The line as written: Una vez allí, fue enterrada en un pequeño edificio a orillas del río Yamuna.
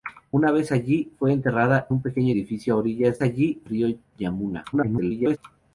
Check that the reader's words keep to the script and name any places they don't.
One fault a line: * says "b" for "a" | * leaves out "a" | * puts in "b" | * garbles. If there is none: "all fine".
* leaves out "en"
* says "allí" for "del"
* garbles